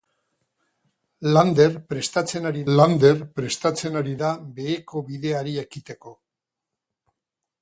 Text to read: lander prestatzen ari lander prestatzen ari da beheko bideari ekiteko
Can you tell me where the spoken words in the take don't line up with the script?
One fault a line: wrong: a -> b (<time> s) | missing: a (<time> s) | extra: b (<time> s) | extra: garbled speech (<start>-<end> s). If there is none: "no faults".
no faults